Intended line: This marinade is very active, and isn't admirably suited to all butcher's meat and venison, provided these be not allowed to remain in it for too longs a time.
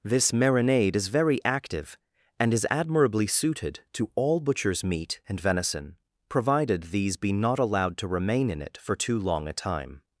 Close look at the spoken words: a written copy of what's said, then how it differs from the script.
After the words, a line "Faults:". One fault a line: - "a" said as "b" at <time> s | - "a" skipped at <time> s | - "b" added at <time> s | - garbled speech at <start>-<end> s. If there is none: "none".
This marinade is very active, and is admirably suited to all butcher's meat and venison, provided these be not allowed to remain in it for too long a time.
Faults:
- "isn't" said as "is" at 2.5 s
- "longs" said as "long" at 9.2 s